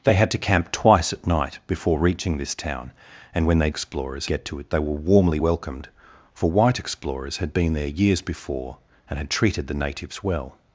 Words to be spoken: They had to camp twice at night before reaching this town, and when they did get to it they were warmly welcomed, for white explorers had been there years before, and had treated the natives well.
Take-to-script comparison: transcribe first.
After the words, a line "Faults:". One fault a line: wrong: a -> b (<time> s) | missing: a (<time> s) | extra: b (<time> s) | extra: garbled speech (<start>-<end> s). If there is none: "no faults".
They had to camp twice at night before reaching this town, and when they explorers get to it they were warmly welcomed, for white explorers had been there years before, and had treated the natives well.
Faults:
wrong: did -> explorers (3.7 s)